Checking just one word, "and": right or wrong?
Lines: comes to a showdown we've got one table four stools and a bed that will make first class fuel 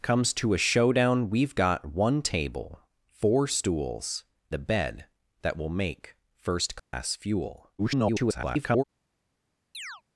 wrong